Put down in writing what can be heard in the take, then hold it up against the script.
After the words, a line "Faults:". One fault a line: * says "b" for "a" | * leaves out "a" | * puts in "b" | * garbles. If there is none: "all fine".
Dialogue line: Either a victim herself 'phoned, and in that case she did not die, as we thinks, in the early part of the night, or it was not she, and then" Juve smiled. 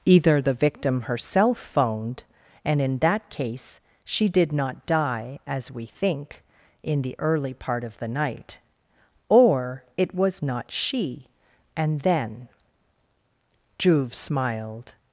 Either the victim herself 'phoned, and in that case she did not die, as we think, in the early part of the night, or it was not she, and then" Juve smiled.
Faults:
* says "the" for "a"
* says "think" for "thinks"